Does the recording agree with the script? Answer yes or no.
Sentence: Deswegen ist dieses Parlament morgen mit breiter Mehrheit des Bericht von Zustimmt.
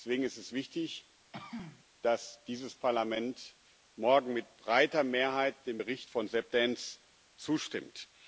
no